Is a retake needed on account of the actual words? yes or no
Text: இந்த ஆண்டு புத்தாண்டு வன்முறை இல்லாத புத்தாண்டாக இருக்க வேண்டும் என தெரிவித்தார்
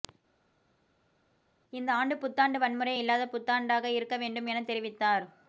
no